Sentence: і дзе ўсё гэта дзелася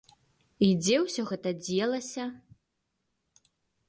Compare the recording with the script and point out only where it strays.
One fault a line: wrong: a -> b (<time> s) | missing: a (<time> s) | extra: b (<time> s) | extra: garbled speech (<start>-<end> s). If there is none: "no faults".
no faults